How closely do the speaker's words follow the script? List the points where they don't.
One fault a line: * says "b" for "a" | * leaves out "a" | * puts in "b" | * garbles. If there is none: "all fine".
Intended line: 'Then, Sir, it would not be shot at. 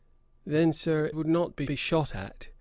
* leaves out "it"
* puts in "be"